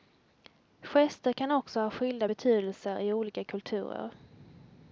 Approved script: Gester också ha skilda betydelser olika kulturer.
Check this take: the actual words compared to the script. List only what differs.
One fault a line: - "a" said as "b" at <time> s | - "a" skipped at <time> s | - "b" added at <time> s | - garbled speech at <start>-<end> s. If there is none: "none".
- "kan" added at 1.3 s
- "i" added at 3.0 s